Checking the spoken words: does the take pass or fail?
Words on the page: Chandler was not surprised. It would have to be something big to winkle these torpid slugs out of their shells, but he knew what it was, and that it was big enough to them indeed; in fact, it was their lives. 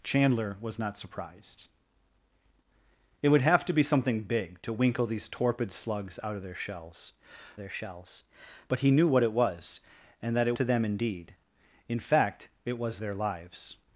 fail